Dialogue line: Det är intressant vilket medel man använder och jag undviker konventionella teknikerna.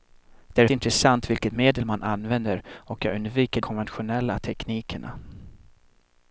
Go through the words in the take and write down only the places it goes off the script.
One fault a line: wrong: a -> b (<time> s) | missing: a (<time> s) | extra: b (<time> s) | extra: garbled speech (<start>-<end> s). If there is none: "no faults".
no faults